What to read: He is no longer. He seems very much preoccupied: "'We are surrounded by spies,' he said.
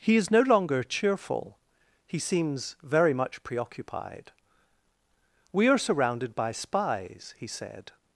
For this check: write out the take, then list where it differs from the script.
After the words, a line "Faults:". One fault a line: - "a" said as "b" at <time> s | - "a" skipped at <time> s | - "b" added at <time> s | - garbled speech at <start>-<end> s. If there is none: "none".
He is no longer cheerful. He seems very much preoccupied: "'We are surrounded by spies,' he said.
Faults:
- "cheerful" added at 0.8 s